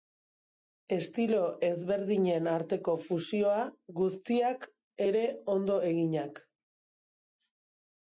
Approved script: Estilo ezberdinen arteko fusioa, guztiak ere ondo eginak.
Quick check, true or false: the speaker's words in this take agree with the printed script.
true